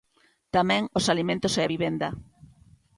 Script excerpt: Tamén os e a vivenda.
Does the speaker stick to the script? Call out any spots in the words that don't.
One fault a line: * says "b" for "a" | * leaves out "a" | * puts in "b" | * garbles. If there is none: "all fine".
* puts in "alimentos"